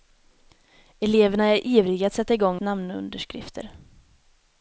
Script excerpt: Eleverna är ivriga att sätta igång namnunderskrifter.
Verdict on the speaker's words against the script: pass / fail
pass